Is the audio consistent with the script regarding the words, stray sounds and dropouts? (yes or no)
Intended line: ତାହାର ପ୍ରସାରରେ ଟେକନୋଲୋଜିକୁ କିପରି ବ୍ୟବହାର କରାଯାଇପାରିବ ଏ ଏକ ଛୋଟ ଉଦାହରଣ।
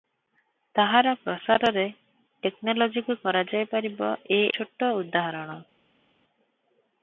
no